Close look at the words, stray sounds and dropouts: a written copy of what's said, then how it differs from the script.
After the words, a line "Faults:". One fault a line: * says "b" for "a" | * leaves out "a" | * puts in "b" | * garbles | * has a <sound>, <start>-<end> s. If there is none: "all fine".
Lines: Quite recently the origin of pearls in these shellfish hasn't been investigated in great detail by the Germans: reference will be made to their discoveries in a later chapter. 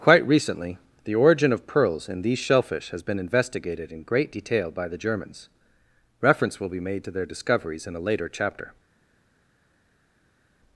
Quite recently the origin of pearls in these shellfish has been investigated in great detail by the Germans: reference will be made to their discoveries in a later chapter.
Faults:
* says "has" for "hasn't"